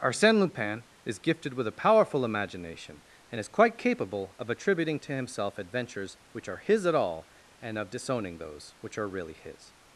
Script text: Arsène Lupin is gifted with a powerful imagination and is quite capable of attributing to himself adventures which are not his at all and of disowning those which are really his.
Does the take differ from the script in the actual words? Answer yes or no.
yes